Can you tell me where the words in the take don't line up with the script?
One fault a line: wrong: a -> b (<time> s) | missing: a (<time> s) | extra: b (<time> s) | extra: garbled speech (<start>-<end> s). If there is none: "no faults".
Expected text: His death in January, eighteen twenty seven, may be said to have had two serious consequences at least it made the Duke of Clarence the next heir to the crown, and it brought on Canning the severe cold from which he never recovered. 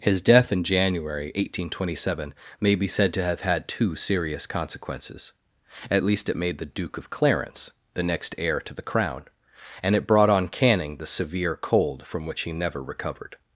no faults